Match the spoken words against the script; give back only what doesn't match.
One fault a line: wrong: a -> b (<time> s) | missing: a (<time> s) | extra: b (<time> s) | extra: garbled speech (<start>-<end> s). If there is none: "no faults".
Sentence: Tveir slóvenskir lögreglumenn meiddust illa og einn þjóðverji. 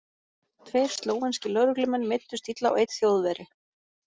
no faults